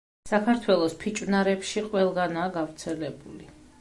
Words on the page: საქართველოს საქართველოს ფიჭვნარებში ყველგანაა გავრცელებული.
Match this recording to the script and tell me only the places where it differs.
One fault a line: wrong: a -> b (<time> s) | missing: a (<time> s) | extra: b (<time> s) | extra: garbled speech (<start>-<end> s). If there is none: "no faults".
missing: საქართველოს (0.9 s)